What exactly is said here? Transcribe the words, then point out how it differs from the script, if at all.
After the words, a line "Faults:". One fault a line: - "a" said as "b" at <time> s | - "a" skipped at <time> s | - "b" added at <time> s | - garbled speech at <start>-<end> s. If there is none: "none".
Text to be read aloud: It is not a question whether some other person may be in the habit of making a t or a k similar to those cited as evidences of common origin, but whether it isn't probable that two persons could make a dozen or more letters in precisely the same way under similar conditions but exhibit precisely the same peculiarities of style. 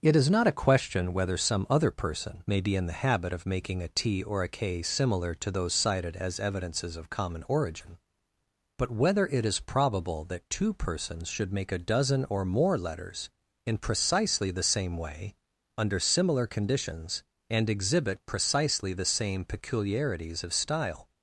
It is not a question whether some other person may be in the habit of making a t or a k similar to those cited as evidences of common origin, but whether it is probable that two persons should make a dozen or more letters in precisely the same way under similar conditions and exhibit precisely the same peculiarities of style.
Faults:
- "isn't" said as "is" at 9.4 s
- "could" said as "should" at 11.3 s
- "but" said as "and" at 17.5 s